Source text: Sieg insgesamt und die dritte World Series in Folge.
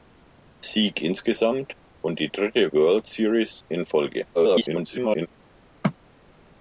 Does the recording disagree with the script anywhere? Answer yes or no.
yes